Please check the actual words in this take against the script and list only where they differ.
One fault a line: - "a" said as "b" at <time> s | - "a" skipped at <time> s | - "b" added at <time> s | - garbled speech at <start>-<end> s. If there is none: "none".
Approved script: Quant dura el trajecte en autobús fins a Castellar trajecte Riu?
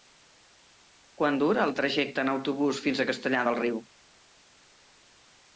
- "trajecte" said as "del" at 3.5 s